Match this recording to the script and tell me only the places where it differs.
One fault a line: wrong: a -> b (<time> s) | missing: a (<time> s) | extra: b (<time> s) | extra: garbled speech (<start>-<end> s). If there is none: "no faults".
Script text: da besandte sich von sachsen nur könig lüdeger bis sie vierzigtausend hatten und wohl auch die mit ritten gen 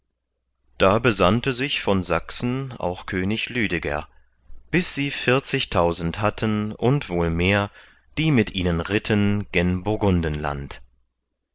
wrong: nur -> auch (2.8 s)
wrong: auch -> mehr (7.3 s)
extra: ihnen (8.5 s)